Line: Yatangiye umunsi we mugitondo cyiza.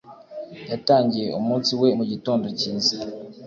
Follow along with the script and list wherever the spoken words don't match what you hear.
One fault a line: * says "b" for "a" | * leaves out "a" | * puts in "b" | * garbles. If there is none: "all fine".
all fine